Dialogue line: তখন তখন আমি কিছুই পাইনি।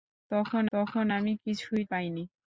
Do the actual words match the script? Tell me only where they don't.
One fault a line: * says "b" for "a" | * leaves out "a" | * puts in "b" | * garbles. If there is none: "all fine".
all fine